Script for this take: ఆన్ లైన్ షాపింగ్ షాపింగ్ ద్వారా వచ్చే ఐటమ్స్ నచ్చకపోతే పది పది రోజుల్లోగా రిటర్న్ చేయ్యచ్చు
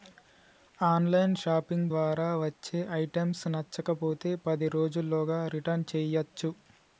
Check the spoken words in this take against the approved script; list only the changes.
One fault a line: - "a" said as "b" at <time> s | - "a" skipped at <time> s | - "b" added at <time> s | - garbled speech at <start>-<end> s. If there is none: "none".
- "షాపింగ్" skipped at 1.9 s
- "పది" skipped at 4.7 s